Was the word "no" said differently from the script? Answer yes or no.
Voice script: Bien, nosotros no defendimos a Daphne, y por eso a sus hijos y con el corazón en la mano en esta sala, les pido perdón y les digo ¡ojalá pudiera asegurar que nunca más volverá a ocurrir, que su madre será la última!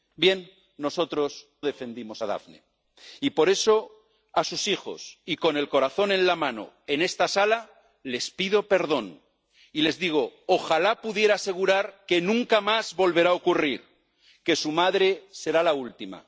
yes